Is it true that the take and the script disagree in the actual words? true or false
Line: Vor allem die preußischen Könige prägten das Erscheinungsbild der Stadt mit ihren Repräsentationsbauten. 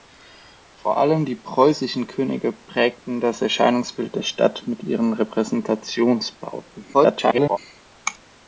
true